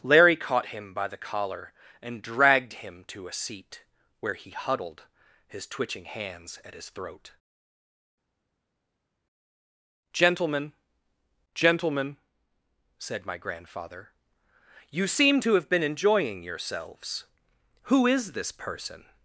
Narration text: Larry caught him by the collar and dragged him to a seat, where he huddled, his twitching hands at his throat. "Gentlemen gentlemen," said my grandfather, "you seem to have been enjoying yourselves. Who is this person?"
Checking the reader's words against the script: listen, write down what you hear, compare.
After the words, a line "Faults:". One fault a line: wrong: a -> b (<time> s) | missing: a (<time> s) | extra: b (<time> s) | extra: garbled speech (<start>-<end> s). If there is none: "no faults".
Larry caught him by the collar and dragged him to a seat, where he huddled, his twitching hands at his throat. "Gentlemen gentlemen," said my grandfather, "you seem to have been enjoying yourselves. Who is this person?"
Faults:
no faults